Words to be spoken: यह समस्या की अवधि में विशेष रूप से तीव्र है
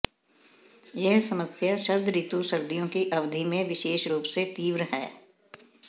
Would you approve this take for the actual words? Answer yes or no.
no